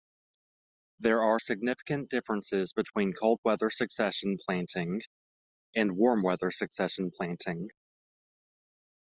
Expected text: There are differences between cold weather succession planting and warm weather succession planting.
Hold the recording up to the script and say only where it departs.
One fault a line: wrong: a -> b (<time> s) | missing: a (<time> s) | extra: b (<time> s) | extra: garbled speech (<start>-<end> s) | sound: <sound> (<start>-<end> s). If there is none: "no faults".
extra: significant (1.4 s)